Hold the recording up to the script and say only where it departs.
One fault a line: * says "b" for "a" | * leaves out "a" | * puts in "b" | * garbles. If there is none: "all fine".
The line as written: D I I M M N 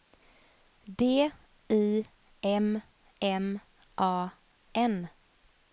* says "M" for "I"
* says "A" for "M"